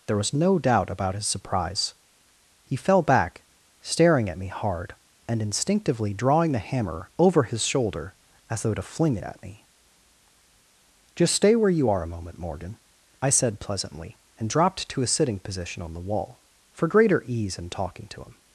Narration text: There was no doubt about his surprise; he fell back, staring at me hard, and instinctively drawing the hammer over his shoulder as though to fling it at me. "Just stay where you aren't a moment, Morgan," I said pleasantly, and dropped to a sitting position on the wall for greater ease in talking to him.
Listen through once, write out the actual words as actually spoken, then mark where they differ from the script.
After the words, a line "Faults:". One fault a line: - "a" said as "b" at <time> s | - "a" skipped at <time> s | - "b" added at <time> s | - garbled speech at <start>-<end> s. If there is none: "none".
There was no doubt about his surprise; he fell back, staring at me hard, and instinctively drawing the hammer over his shoulder as though to fling it at me. "Just stay where you are a moment, Morgan," I said pleasantly, and dropped to a sitting position on the wall for greater ease in talking to him.
Faults:
- "aren't" said as "are" at 11.9 s